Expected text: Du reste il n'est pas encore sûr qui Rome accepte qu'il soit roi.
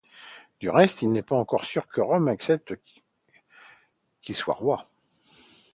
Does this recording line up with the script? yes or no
no